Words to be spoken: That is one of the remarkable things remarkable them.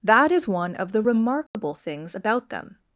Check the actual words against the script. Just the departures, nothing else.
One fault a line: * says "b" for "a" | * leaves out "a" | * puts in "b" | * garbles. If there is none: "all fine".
* says "about" for "remarkable"